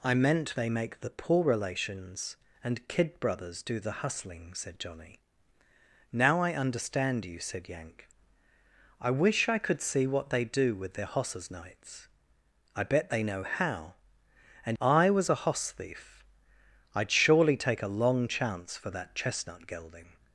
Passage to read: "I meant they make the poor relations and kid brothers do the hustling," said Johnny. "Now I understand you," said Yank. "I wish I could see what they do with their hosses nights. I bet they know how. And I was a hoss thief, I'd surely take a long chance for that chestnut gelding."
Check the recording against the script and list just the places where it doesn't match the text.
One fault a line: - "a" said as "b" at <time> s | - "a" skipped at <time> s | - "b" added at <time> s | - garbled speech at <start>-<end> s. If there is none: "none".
none